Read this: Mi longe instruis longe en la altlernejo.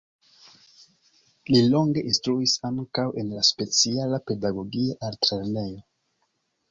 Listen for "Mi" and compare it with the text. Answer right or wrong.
wrong